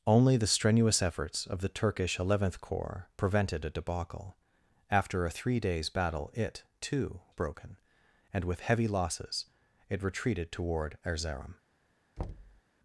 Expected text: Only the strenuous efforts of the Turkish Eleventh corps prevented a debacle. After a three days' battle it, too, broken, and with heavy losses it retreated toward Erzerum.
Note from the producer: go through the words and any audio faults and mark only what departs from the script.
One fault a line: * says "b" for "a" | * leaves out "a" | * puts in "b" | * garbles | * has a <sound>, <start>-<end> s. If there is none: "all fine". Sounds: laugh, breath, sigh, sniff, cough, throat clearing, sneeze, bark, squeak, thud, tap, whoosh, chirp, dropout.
* has a thud, 12.2-12.6 s